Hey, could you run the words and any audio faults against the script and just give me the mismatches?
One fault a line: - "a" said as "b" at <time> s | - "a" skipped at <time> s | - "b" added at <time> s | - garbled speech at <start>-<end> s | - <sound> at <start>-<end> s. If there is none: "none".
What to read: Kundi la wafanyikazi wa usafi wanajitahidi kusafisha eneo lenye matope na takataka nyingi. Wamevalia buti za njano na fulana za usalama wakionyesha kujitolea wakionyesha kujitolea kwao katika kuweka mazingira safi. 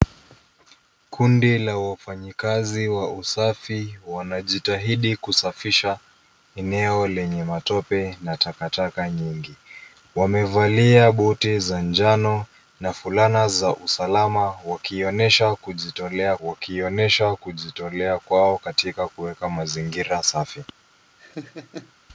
- laugh at 21.2-21.9 s